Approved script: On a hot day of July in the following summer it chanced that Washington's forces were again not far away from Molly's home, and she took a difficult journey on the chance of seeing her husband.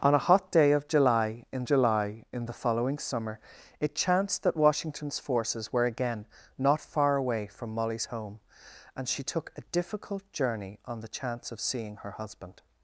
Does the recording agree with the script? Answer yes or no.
no